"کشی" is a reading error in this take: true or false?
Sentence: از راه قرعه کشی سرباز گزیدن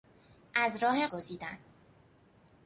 true